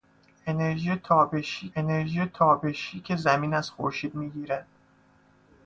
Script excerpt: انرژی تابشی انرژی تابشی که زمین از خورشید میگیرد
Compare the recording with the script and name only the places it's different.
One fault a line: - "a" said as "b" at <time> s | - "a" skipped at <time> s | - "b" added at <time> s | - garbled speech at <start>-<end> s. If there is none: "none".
none